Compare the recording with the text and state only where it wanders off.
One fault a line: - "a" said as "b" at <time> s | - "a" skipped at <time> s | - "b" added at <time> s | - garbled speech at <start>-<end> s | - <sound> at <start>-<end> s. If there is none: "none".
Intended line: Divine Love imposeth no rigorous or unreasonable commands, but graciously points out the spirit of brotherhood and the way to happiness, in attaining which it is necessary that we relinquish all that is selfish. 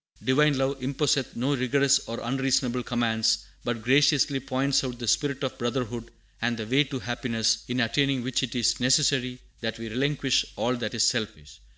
none